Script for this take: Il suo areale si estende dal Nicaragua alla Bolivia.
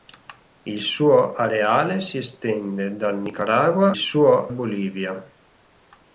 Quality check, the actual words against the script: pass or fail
fail